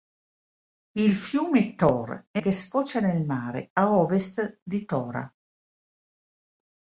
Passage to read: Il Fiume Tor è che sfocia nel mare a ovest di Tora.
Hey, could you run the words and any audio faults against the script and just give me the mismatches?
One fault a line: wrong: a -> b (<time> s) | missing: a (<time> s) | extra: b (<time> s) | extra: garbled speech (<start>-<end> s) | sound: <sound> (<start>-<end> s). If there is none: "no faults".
no faults